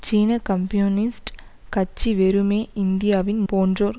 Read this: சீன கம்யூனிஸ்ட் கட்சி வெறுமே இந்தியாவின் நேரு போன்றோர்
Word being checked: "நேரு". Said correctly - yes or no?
no